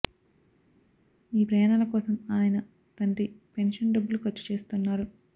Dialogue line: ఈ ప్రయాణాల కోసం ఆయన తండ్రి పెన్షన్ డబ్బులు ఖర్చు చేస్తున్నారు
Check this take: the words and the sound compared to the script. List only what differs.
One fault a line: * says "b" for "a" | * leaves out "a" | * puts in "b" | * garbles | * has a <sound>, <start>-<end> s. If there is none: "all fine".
all fine